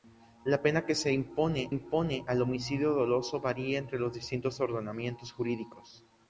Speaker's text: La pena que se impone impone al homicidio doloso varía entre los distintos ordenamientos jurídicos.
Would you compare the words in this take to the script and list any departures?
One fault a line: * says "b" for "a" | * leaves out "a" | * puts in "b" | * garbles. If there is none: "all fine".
all fine